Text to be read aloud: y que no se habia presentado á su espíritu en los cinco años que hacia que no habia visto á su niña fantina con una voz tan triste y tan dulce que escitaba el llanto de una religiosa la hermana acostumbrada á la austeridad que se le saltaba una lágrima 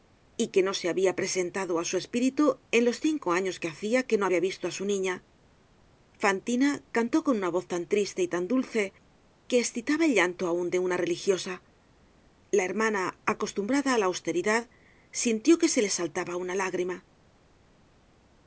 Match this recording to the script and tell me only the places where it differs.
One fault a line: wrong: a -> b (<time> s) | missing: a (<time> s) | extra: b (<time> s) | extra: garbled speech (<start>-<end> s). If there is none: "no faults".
extra: cantó (7.0 s)
extra: aun (10.5 s)
extra: sintió (15.2 s)